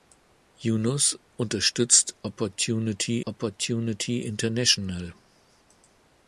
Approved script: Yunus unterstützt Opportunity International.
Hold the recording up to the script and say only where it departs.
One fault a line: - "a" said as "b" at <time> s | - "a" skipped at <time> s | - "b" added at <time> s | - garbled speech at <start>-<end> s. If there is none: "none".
- "Opportunity" added at 3.2 s